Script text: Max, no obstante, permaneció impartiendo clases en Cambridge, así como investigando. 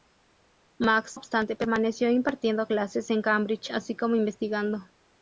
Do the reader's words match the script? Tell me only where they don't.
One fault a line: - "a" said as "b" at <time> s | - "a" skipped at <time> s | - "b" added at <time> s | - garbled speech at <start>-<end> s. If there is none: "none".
- "no" skipped at 1.2 s